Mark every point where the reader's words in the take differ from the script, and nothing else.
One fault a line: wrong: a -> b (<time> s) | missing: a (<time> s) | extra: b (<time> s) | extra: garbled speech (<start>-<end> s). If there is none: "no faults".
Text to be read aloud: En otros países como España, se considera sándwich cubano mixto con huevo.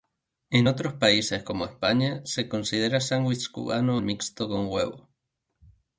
no faults